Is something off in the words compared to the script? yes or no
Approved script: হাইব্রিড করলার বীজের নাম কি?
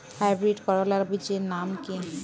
no